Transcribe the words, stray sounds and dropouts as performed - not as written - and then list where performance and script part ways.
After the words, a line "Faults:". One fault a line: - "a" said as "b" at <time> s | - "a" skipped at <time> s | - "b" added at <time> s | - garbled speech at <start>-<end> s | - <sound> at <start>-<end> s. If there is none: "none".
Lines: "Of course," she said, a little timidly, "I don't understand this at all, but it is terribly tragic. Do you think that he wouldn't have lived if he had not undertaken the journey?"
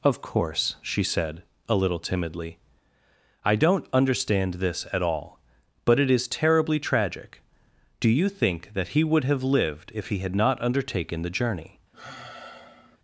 "Of course," she said, a little timidly, "I don't understand this at all, but it is terribly tragic. Do you think that he would have lived if he had not undertaken the journey?"
Faults:
- "wouldn't" said as "would" at 9.0 s
- sigh at 11.9-13.0 s